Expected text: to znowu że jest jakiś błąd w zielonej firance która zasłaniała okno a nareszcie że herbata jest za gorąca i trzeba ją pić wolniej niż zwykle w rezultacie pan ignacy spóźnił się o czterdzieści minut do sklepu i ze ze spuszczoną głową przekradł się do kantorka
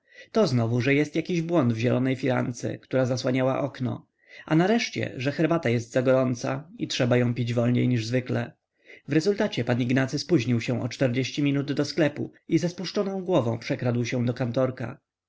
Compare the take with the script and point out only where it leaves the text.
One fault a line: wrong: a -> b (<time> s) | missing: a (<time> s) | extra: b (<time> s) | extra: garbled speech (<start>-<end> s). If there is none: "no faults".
missing: ze (12.7 s)